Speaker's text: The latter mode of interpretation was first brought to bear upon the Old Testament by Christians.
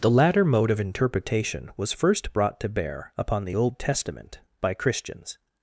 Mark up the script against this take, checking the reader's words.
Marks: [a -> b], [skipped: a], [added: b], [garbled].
The latter mode of interpretation was first brought to bear upon the Old Testament by Christians.